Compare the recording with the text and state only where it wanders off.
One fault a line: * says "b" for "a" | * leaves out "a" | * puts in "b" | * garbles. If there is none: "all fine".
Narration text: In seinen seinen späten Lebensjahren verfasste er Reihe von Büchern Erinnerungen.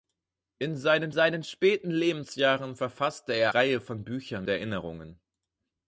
all fine